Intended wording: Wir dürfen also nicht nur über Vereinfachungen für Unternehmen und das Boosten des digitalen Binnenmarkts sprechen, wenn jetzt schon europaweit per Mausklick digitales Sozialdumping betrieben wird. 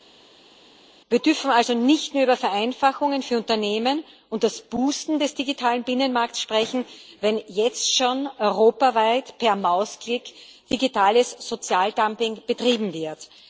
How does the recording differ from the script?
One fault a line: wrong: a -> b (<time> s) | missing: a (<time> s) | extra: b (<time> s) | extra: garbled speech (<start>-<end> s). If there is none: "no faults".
no faults